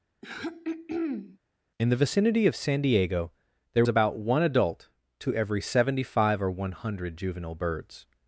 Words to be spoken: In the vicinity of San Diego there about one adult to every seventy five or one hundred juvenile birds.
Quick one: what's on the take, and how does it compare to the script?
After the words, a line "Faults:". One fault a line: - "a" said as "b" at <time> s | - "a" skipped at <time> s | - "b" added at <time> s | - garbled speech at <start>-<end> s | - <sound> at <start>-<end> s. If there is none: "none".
In the vicinity of San Diego there about one adult to every seventy five or one hundred juvenile birds.
Faults:
- throat clearing at 0.2-1.4 s